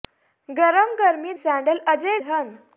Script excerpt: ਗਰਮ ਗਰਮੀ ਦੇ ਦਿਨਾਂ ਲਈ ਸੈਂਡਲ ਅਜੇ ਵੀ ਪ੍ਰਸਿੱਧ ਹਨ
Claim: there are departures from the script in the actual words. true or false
true